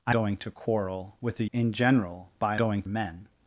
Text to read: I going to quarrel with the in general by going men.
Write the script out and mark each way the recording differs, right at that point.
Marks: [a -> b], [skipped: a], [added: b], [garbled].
I going to quarrel with the in general by going men.